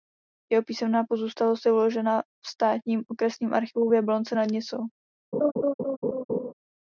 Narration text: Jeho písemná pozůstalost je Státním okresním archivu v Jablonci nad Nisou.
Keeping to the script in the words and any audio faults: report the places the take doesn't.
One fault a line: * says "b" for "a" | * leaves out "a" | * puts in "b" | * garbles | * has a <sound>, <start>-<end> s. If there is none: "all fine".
* puts in "uložena v"
* has a laugh, 5.3-6.5 s